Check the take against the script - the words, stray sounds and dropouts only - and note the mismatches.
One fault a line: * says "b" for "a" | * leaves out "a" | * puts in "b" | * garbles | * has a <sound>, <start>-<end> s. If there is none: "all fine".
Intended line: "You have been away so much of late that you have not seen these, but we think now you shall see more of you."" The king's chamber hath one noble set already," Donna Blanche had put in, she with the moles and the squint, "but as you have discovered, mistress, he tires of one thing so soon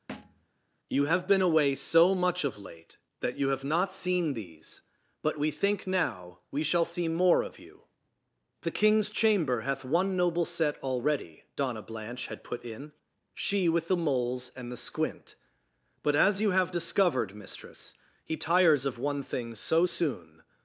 * has a thud, 0.1-0.5 s
* says "we" for "you"